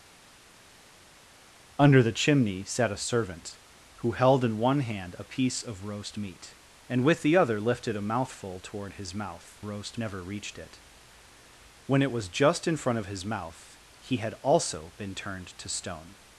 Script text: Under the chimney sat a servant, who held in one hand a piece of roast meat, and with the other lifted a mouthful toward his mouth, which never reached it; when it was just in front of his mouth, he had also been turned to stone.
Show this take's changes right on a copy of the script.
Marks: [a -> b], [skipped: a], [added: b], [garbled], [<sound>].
Under the chimney sat a servant, who held in one hand a piece of roast meat, and with the other lifted a mouthful toward his mouth, [which -> roast] never reached it; when it was just in front of his mouth, he had also been turned to stone.